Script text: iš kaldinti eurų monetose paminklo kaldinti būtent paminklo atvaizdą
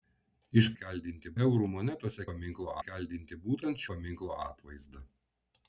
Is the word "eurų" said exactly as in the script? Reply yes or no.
yes